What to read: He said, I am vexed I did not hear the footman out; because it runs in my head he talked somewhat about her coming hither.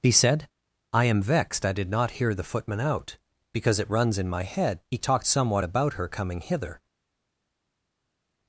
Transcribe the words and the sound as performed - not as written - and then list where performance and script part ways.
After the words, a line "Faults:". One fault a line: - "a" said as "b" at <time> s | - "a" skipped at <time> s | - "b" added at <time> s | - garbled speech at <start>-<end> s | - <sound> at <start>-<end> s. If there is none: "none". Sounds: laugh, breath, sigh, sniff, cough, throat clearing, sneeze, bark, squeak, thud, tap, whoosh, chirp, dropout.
He said, I am vexed I did not hear the footman out; because it runs in my head he talked somewhat about her coming hither.
Faults:
none